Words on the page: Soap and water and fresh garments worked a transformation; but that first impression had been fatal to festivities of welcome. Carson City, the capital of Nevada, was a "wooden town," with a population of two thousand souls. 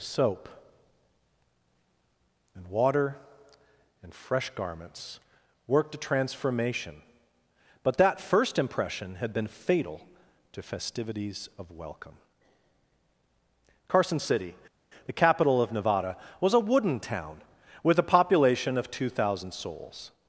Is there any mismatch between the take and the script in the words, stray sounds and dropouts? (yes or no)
no